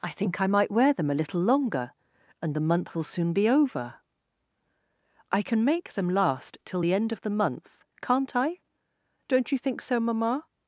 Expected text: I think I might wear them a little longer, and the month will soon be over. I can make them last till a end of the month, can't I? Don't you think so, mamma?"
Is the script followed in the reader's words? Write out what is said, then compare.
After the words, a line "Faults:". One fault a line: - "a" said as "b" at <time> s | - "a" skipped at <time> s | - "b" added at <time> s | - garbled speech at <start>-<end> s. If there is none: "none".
I think I might wear them a little longer, and the month will soon be over. I can make them last till the end of the month, can't I? Don't you think so, mamma?"
Faults:
- "a" said as "the" at 6.8 s